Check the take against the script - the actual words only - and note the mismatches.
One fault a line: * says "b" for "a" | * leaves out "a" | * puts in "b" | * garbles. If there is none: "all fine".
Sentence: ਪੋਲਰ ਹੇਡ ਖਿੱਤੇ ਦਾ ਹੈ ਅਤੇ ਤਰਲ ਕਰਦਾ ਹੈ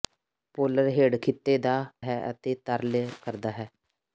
all fine